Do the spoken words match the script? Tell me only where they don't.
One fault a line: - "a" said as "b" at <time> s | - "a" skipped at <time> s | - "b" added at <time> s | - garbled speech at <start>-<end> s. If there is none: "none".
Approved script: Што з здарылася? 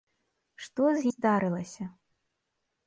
none